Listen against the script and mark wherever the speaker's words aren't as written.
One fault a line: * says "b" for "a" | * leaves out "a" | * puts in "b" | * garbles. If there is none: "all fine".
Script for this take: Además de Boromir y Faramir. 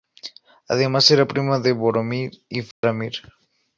* puts in "era prima"